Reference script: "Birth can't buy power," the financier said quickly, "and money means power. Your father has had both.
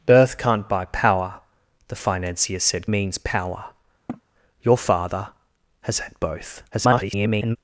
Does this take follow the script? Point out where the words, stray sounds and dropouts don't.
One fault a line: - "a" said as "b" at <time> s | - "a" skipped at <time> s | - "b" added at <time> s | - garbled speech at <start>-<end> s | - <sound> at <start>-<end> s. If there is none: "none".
- "quickly and money" skipped at 2.9 s
- sniff at 4.1-4.2 s
- garbled speech at 6.7-7.6 s